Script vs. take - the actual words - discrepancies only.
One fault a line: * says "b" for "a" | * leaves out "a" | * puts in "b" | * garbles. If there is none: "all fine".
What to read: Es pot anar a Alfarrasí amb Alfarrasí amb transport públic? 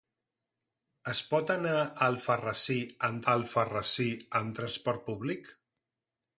all fine